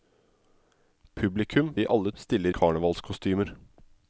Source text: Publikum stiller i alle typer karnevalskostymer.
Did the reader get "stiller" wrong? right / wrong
wrong